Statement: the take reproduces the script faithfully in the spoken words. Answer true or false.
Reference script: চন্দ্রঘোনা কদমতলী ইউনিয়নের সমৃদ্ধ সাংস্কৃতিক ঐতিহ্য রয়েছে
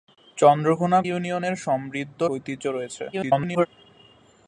false